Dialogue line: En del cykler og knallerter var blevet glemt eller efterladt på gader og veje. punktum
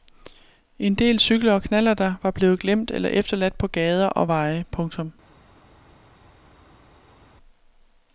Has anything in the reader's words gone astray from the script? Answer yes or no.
no